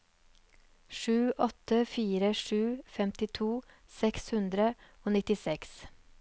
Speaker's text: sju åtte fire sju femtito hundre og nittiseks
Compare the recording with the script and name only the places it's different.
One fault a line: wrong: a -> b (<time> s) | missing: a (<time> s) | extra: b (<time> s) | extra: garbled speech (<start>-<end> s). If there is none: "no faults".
extra: seks (4.0 s)